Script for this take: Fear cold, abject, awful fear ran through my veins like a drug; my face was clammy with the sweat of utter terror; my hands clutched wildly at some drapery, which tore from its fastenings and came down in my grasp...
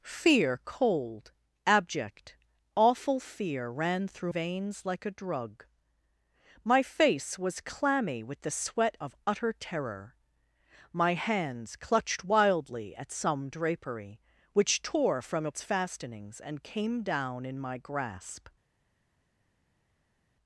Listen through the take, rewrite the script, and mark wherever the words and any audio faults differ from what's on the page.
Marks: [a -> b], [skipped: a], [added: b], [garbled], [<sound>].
Fear cold, abject, awful fear ran through [skipped: my] veins like a drug; my face was clammy with the sweat of utter terror; my hands clutched wildly at some drapery, which tore from its fastenings and came down in my grasp...